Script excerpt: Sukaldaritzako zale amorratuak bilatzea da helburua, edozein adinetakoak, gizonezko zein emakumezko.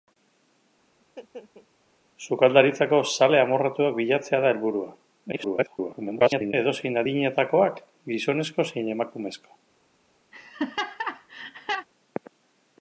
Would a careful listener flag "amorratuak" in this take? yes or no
no